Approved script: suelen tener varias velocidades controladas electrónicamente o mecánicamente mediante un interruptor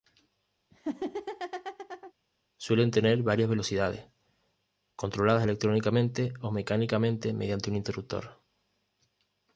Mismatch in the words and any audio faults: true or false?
true